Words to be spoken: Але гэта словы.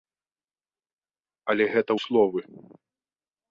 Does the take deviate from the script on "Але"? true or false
false